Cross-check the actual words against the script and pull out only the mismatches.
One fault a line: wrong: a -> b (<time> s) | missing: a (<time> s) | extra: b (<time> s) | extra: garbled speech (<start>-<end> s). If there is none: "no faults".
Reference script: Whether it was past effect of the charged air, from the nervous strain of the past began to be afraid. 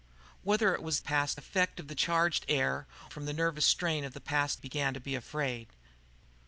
no faults